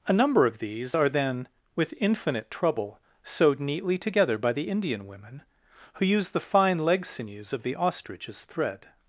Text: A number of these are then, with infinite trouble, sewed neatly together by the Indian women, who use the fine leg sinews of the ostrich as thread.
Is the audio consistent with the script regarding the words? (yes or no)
yes